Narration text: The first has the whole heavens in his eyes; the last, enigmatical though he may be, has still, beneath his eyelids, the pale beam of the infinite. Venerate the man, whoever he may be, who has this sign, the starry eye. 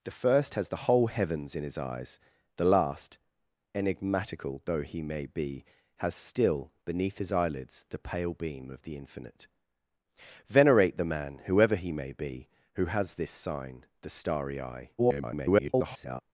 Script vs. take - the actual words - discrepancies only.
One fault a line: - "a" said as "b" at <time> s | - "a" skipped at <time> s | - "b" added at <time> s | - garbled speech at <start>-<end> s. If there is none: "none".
- garbled speech at 15.0-16.2 s